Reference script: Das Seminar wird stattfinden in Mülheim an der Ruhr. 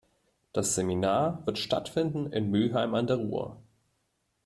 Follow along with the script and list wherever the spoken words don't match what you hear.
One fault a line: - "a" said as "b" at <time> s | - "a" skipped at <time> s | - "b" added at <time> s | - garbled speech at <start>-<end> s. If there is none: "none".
none